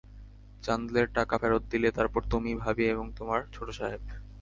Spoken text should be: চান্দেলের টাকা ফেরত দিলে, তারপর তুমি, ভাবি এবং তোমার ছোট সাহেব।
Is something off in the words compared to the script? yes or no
no